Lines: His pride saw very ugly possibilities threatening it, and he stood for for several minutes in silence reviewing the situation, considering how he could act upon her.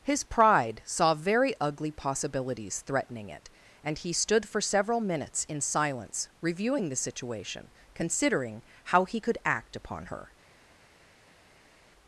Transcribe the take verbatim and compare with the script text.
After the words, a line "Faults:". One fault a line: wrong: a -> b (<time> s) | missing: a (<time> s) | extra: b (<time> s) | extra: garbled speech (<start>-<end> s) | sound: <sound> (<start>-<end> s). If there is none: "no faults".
His pride saw very ugly possibilities threatening it, and he stood for several minutes in silence reviewing the situation, considering how he could act upon her.
Faults:
missing: for (4.6 s)